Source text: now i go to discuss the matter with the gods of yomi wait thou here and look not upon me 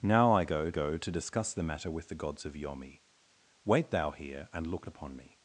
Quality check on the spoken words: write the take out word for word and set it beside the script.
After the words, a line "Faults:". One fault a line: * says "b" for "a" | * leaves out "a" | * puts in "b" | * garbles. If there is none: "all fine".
now i go go to discuss the matter with the gods of yomi wait thou here and look upon me
Faults:
* puts in "go"
* leaves out "not"